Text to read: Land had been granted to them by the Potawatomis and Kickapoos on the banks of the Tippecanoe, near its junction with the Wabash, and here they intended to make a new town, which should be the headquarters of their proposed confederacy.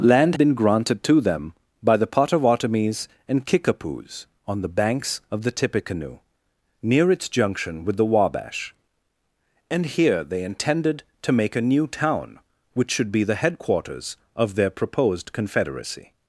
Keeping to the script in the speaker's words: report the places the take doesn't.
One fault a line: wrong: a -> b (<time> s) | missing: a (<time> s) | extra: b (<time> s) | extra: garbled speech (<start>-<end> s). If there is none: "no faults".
missing: had (0.3 s)